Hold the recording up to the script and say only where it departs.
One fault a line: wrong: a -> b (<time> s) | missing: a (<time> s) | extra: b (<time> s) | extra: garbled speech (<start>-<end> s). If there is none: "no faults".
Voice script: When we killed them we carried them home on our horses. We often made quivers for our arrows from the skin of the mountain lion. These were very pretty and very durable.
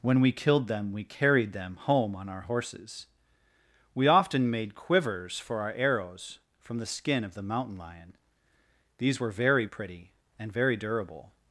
no faults